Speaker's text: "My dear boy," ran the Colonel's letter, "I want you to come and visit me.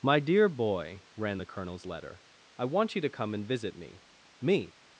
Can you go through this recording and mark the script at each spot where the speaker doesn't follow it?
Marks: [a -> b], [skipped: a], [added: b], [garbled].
"My dear boy," ran the Colonel's letter, "I want you to come and visit me. [added: me]